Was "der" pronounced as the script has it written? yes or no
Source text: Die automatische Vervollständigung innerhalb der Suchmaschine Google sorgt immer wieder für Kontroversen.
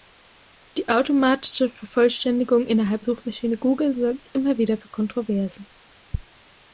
no